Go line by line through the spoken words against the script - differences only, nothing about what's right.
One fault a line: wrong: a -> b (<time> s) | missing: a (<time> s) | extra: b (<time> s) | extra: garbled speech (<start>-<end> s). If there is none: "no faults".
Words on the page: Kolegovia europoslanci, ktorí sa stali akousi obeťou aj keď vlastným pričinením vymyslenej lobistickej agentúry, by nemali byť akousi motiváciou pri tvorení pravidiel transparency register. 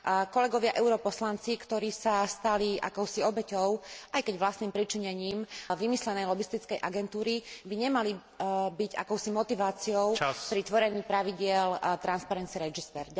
no faults